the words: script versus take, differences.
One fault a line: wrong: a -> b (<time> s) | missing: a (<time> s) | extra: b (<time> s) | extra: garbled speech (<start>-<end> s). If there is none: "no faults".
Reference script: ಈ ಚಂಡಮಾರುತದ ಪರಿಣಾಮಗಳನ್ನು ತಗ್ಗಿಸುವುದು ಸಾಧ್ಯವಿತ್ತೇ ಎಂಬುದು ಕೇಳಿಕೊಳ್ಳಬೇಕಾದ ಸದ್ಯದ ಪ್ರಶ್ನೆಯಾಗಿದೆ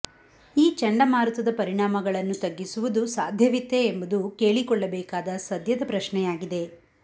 no faults